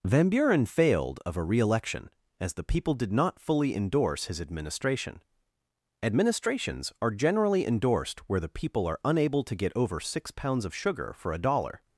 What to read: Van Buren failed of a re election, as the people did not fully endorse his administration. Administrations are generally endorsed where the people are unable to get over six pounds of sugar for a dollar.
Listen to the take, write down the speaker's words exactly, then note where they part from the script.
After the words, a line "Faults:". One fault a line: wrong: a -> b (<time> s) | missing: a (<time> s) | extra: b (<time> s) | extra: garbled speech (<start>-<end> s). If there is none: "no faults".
Van Buren failed of a re election, as the people did not fully endorse his administration. Administrations are generally endorsed where the people are unable to get over six pounds of sugar for a dollar.
Faults:
no faults